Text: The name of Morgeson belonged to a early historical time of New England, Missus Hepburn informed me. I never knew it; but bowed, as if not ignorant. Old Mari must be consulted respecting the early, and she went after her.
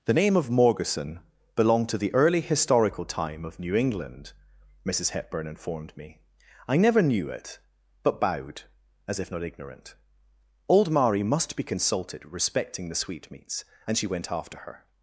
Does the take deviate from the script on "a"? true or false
true